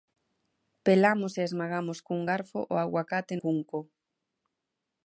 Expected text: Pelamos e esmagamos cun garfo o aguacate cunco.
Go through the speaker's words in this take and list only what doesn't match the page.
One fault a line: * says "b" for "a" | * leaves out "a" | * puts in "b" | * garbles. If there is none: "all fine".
all fine